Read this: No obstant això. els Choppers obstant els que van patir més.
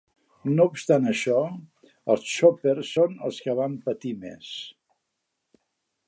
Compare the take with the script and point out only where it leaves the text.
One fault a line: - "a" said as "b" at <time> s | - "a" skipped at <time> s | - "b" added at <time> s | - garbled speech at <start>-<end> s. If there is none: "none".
- "obstant" said as "són" at 3.0 s